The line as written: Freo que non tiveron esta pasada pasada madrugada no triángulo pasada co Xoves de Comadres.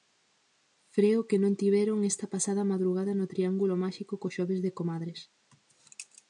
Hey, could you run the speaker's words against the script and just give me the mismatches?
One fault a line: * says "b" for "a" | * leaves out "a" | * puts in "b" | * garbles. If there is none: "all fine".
* leaves out "pasada"
* says "máxico" for "pasada"